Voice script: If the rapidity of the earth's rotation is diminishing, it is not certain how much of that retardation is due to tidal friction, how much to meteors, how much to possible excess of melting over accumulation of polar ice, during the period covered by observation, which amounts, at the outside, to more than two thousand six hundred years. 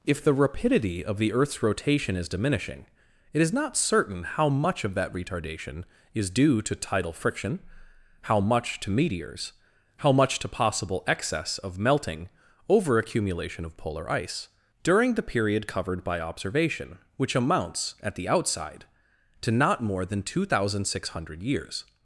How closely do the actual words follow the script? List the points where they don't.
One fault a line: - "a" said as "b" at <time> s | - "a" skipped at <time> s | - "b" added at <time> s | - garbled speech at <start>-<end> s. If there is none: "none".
- "not" added at 19.5 s